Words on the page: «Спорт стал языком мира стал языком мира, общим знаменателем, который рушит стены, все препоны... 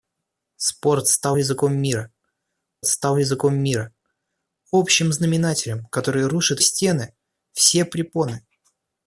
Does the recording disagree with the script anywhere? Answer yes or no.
no